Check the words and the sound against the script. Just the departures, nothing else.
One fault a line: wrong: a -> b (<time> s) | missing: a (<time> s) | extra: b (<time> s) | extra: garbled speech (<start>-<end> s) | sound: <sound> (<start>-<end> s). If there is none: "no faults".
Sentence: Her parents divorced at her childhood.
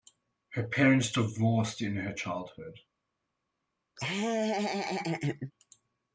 wrong: at -> in (1.8 s)
sound: laugh (4.0-5.5 s)